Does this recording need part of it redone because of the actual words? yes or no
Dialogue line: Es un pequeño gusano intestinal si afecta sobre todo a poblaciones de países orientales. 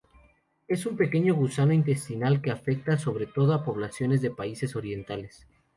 yes